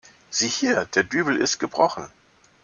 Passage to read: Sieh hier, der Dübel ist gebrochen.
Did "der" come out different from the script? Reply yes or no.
no